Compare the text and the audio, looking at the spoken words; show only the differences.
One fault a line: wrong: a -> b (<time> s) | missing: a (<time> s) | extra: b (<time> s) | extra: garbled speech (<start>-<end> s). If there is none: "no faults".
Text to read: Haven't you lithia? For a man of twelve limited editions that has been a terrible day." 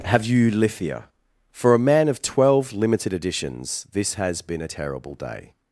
wrong: Haven't -> Have (0.1 s)
wrong: that -> this (3.9 s)